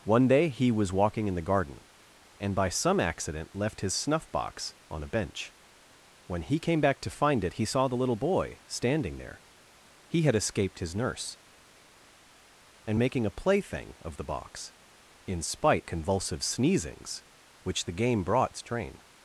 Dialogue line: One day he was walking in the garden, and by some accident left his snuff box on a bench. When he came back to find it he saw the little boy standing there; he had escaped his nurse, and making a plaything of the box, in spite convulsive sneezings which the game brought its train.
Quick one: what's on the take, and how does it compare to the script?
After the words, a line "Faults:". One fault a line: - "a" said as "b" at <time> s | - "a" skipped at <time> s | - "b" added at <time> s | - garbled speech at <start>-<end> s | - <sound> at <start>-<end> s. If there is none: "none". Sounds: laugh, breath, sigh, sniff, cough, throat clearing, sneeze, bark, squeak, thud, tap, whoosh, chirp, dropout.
One day he was walking in the garden, and by some accident left his snuff box on a bench. When he came back to find it he saw the little boy standing there; he had escaped his nurse, and making a plaything of the box, in spite convulsive sneezings which the game brought its train.
Faults:
none